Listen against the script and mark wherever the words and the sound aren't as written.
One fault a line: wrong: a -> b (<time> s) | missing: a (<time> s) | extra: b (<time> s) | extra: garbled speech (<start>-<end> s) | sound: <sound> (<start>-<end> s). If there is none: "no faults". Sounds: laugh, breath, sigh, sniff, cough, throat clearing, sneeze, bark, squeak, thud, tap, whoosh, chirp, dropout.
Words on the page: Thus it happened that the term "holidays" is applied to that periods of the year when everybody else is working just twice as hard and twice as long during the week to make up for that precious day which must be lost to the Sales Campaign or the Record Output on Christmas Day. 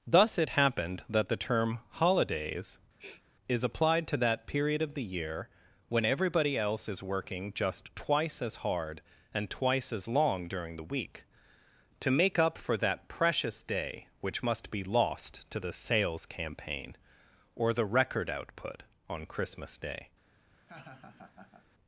sound: sniff (3.0-3.2 s)
wrong: periods -> period (4.5 s)
sound: laugh (20.5-21.7 s)